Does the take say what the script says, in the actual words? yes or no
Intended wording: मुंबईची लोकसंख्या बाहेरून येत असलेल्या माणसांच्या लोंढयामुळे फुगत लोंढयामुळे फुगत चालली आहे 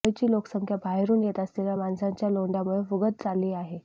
no